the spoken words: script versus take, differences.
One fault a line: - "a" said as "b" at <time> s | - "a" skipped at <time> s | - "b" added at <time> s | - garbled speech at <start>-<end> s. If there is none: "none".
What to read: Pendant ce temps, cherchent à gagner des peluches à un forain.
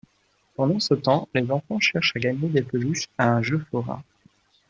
- "les enfants" added at 1.4 s
- "jeu" added at 3.4 s